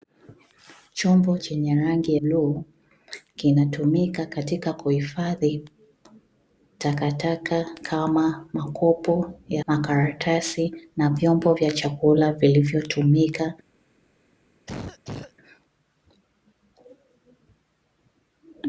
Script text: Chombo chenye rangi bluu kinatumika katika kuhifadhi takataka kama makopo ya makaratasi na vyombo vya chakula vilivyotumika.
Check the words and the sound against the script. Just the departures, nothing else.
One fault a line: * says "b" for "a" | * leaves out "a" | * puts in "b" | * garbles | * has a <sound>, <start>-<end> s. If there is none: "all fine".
* has a cough, 14.7-15.3 s